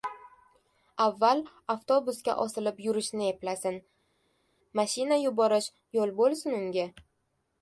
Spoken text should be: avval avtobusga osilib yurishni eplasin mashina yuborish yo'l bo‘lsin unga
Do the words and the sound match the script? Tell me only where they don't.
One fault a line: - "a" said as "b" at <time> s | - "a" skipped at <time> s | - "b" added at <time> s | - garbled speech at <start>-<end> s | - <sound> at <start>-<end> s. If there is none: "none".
none